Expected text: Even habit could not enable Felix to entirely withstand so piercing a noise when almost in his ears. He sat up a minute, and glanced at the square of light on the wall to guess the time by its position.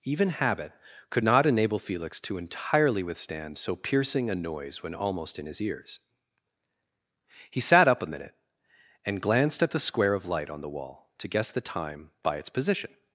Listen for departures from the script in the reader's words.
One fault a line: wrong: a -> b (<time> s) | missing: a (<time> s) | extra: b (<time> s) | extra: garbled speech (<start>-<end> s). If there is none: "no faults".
no faults